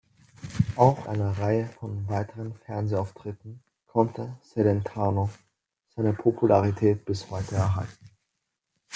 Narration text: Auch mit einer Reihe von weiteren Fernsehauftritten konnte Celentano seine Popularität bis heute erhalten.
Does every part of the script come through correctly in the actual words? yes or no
no